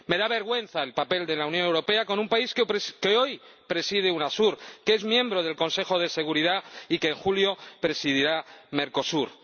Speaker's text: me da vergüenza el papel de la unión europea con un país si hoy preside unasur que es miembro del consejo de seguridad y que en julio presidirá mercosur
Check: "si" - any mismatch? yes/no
yes